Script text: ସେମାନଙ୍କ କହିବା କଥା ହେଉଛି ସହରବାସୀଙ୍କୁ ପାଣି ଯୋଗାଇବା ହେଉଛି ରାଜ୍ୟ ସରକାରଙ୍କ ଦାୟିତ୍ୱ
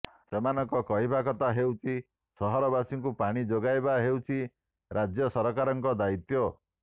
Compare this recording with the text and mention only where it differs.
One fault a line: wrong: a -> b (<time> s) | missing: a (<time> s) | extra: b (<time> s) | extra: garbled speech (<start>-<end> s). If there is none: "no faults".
no faults